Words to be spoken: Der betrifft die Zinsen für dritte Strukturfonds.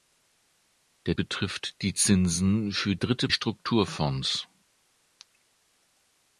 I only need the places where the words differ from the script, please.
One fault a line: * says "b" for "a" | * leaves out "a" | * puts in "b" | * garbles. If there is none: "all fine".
all fine